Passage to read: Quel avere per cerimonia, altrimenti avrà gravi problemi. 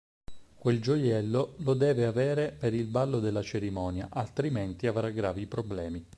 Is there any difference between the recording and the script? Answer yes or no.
yes